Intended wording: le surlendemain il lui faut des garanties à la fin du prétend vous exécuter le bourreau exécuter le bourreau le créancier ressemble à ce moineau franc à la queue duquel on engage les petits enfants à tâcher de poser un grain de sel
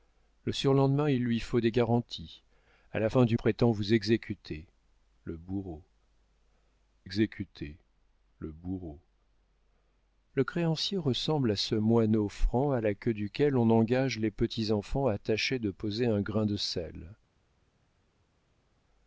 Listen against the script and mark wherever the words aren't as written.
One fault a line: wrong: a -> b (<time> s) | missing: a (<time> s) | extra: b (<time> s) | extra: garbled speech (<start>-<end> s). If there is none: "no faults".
no faults